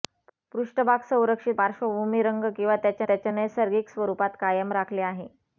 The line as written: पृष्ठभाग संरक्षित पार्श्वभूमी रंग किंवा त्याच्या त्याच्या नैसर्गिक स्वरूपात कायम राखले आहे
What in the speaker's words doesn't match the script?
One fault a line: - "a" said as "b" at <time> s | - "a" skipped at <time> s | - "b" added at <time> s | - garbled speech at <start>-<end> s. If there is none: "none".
none